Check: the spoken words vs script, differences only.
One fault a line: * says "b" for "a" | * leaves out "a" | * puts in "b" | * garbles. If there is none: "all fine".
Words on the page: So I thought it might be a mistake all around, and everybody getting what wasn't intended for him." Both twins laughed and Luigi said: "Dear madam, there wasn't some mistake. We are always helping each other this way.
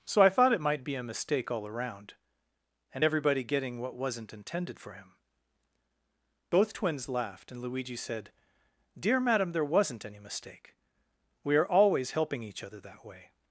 * says "any" for "some"
* says "that" for "this"